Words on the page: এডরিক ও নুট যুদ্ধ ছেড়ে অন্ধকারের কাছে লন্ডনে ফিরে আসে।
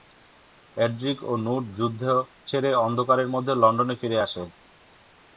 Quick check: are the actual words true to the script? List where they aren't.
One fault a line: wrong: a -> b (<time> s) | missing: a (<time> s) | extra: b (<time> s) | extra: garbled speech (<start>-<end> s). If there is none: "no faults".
wrong: কাছে -> মধ্যে (3.3 s)